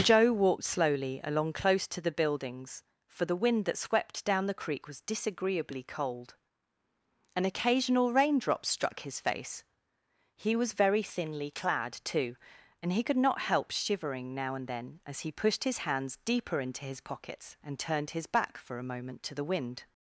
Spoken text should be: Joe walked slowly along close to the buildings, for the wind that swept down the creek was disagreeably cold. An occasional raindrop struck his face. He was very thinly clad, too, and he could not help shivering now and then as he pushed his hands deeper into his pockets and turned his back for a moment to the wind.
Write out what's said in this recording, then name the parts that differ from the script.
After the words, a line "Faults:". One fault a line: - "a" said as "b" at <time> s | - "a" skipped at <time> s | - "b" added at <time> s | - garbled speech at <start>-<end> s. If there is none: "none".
Joe walked slowly along close to the buildings, for the wind that swept down the creek was disagreeably cold. An occasional raindrop struck his face. He was very thinly clad, too, and he could not help shivering now and then as he pushed his hands deeper into his pockets and turned his back for a moment to the wind.
Faults:
none